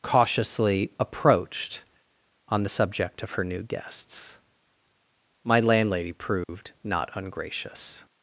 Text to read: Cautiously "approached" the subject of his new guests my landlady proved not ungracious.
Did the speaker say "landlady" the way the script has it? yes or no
yes